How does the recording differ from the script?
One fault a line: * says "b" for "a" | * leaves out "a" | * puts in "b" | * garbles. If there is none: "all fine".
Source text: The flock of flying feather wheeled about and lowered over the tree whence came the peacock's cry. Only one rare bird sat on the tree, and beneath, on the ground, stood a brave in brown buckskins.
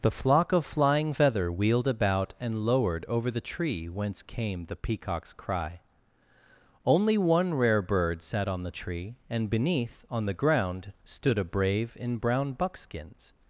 all fine